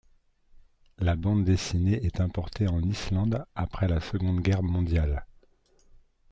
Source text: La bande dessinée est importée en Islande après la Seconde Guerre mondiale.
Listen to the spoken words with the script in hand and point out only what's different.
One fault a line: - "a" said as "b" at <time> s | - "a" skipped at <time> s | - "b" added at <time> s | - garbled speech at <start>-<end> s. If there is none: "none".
none